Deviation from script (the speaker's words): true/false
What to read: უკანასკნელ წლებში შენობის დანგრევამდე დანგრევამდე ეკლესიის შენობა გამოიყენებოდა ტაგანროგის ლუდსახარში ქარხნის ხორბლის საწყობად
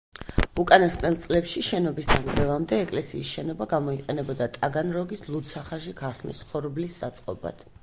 true